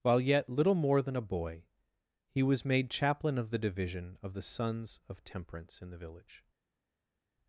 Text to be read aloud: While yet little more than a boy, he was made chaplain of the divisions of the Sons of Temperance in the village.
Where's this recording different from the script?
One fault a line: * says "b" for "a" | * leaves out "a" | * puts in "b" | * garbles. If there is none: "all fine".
* says "division" for "divisions"